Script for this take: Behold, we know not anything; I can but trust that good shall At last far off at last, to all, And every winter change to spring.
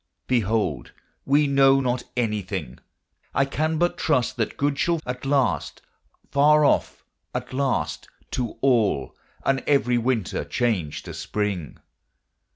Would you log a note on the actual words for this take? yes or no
no